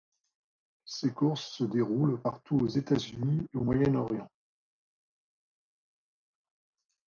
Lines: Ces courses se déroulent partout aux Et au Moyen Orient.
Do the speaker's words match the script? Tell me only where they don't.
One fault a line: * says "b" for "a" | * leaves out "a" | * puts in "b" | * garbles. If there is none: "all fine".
* puts in "États Unis"